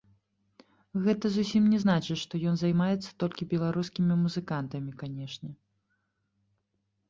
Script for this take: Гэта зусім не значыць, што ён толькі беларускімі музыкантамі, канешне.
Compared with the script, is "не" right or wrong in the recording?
right